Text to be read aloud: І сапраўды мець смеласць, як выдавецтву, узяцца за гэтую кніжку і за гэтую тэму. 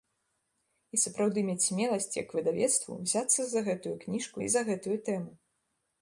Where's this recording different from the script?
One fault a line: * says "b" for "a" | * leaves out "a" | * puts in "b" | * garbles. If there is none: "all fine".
all fine